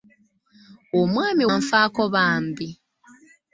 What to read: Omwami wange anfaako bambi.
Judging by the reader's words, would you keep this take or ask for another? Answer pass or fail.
fail